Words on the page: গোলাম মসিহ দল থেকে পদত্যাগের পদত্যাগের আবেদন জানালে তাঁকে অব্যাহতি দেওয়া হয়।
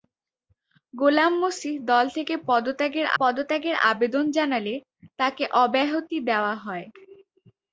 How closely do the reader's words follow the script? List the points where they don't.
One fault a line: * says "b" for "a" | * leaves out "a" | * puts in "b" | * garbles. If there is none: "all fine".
all fine